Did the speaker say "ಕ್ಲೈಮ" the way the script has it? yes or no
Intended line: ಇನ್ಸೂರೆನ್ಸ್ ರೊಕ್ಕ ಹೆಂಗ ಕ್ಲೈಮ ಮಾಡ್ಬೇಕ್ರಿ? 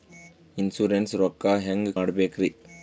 no